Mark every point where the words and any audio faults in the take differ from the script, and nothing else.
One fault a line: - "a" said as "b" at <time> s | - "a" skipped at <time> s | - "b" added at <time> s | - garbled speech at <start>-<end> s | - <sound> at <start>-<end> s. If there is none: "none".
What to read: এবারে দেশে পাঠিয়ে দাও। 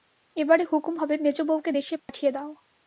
- "হুকুম হবে মেজোবউকে" added at 0.7 s
- dropout at 2.0-2.1 s